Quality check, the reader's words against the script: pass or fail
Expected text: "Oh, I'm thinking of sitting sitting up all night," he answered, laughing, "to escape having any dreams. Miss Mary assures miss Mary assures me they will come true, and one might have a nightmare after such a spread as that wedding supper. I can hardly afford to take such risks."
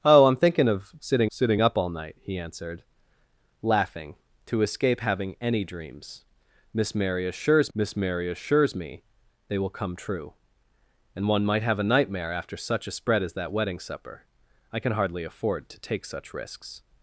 pass